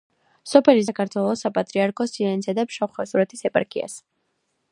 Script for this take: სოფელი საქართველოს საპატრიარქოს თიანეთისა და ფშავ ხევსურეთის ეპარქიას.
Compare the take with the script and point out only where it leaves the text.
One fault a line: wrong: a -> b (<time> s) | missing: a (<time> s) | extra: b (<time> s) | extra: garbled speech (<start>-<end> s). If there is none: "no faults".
no faults